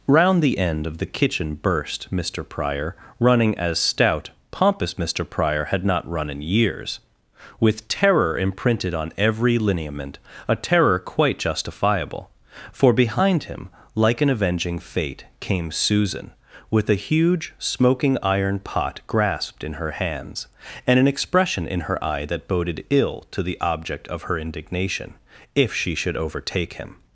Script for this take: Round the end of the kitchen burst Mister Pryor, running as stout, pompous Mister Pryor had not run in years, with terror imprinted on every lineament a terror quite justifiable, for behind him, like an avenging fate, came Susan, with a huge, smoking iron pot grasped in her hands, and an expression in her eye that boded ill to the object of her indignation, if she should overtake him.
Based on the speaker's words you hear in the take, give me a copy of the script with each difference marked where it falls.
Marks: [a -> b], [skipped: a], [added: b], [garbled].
Round the end of the kitchen burst Mister Pryor, running as stout, pompous Mister Pryor had not run in years, with terror imprinted on every lineament a terror quite justifiable, for behind him, like an avenging fate, came Susan, with a huge, smoking iron pot grasped in her hands, and an expression in her eye that boded ill to the object of her indignation, if she should overtake him.